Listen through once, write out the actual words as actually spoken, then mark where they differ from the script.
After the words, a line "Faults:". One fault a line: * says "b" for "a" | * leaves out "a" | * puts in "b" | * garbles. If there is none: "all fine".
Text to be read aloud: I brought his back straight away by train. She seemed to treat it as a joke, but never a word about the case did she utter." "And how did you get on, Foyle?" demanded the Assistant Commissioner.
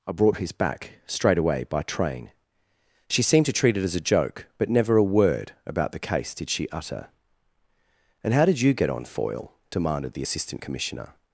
I brought his back straight away by train. She seemed to treat it as a joke, but never a word about the case did she utter." "And how did you get on, Foyle?" demanded the Assistant Commissioner.
Faults:
all fine